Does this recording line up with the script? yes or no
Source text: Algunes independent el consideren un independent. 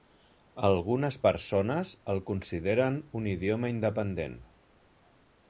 no